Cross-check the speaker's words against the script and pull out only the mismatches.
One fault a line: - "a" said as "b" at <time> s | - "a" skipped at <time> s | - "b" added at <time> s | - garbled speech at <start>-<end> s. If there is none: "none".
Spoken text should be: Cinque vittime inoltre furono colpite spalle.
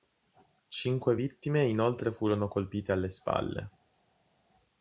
- "alle" added at 2.9 s